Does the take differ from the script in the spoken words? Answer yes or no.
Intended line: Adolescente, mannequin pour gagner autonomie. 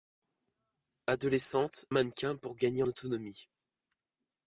no